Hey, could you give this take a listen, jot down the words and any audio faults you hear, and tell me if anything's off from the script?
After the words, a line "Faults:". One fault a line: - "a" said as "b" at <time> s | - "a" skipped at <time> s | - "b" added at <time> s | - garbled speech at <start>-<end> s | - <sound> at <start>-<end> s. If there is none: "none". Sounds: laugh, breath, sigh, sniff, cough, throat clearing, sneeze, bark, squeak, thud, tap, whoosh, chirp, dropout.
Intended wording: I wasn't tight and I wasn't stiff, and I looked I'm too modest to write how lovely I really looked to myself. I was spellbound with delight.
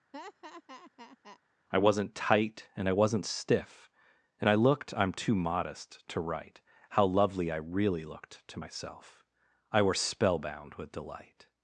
I wasn't tight and I wasn't stiff, and I looked I'm too modest to write how lovely I really looked to myself. I were spellbound with delight.
Faults:
- laugh at 0.1-1.4 s
- "was" said as "were" at 9.8 s